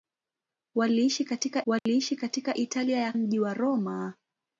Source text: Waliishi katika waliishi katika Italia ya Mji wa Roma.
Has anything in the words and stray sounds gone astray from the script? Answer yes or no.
yes